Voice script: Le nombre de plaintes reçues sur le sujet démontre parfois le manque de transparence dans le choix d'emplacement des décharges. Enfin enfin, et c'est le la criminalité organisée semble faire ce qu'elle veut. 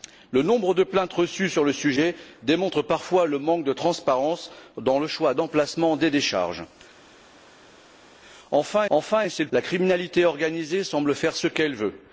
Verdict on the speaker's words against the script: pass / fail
pass